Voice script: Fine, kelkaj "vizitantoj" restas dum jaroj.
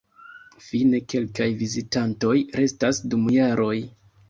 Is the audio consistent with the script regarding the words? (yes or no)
yes